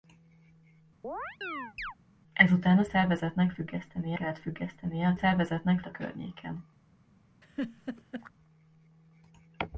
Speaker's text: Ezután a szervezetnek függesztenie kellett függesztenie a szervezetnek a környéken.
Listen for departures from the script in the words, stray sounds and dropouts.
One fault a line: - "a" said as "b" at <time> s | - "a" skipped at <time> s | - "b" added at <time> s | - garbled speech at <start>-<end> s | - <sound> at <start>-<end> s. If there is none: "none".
- chirp at 1.0-1.9 s
- laugh at 7.4-8.3 s